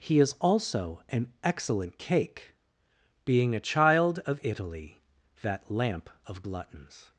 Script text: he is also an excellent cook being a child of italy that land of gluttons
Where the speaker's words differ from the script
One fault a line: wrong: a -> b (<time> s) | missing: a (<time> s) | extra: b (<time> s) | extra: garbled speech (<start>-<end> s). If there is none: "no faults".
wrong: cook -> cake (2.0 s)
wrong: land -> lamp (5.7 s)